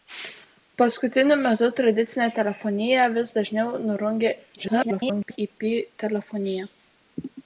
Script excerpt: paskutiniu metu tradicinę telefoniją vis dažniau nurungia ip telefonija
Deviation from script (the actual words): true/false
true